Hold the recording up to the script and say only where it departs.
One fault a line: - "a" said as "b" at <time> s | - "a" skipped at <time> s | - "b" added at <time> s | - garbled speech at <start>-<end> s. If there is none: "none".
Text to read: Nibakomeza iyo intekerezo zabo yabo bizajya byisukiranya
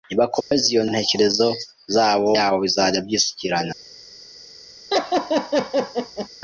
none